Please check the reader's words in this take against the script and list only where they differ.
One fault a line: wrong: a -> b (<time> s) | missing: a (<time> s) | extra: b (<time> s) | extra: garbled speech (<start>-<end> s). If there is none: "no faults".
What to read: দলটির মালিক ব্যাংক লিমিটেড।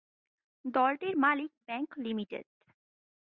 no faults